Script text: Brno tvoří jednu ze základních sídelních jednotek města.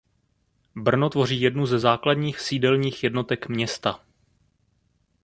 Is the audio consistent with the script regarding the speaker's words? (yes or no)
yes